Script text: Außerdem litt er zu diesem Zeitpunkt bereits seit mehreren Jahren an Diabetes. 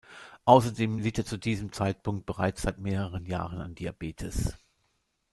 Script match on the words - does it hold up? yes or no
yes